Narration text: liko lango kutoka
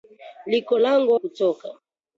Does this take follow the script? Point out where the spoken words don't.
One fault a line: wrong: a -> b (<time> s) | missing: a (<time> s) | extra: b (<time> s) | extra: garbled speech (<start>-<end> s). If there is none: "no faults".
no faults